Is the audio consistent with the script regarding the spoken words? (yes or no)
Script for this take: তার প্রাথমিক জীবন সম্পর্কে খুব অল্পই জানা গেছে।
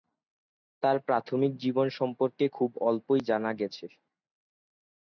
yes